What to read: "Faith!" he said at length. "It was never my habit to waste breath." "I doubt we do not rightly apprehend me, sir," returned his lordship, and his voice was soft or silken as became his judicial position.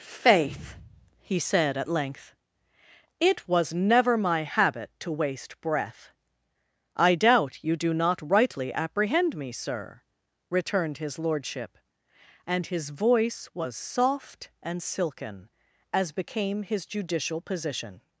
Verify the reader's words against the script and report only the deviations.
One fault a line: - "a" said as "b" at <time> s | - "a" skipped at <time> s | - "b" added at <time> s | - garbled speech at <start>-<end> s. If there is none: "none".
- "we" said as "you" at 7.6 s
- "or" said as "and" at 14.6 s